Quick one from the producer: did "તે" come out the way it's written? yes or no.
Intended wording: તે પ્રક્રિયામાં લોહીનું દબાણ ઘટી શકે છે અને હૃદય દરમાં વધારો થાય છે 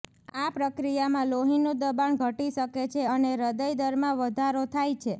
no